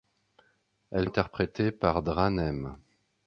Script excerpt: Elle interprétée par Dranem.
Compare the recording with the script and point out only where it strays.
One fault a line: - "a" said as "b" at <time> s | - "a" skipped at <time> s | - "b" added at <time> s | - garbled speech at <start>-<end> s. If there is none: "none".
none